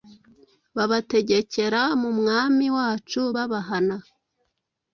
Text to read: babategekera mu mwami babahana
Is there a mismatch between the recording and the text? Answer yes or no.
yes